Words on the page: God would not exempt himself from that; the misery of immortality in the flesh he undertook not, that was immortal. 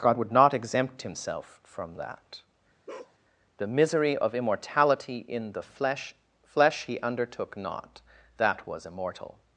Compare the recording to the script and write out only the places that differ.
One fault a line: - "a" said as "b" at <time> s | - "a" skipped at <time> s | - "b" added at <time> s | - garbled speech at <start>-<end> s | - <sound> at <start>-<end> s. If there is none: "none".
- bark at 2.9-3.2 s
- "flesh" added at 6.4 s